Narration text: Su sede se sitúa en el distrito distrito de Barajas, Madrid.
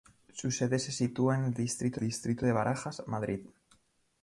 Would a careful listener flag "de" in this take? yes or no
no